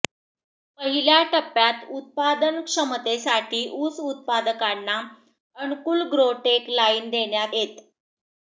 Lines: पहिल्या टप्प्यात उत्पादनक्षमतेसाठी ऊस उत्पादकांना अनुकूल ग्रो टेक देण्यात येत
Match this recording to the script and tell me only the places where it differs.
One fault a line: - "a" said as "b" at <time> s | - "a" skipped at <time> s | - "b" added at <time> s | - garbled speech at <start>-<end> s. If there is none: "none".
- "लाईन" added at 6.7 s